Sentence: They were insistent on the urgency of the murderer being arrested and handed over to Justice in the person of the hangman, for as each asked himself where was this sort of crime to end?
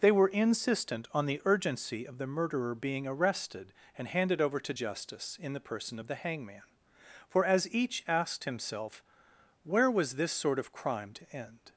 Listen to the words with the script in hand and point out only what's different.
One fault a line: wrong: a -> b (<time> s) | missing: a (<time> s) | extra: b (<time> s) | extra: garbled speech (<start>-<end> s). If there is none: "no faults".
no faults